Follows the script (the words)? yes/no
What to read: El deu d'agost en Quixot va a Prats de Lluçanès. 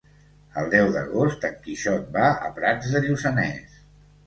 yes